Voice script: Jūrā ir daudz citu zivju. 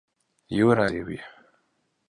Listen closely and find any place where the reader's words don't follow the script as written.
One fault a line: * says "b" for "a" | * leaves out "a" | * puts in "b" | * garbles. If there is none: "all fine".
* leaves out "ir daudz citu"